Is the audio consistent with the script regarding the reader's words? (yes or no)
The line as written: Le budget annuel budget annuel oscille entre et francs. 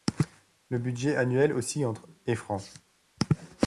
no